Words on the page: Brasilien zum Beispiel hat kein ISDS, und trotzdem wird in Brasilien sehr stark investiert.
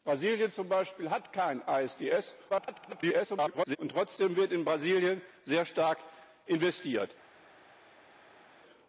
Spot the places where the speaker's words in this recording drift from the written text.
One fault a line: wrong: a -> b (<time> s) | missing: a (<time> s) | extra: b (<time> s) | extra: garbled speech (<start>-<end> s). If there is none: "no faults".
extra: garbled speech (2.5-3.8 s)